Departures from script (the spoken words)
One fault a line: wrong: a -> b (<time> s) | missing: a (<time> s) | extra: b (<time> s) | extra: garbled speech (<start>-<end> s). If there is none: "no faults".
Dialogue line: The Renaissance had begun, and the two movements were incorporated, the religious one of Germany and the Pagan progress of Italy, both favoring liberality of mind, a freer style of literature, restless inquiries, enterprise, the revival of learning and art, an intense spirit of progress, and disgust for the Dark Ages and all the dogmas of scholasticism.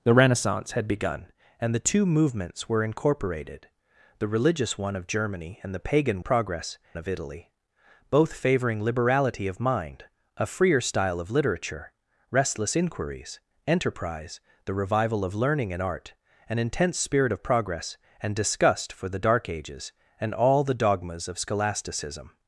no faults